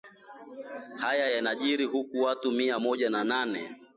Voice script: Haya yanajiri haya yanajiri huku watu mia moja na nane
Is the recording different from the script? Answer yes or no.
yes